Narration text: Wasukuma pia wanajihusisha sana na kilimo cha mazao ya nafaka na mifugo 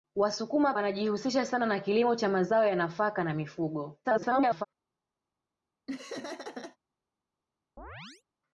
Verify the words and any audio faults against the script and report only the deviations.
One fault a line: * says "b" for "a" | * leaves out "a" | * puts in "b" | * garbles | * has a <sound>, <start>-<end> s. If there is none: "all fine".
* leaves out "pia"
* garbles
* has a laugh, 5.9-6.8 s
* has a chirp, 7.8-8.2 s